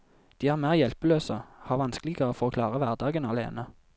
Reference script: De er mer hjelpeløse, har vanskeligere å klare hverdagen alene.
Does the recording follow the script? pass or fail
fail